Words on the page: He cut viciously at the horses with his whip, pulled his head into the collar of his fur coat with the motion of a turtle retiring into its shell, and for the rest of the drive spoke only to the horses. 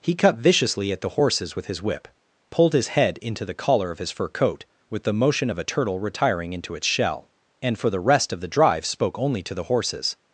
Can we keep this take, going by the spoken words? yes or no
yes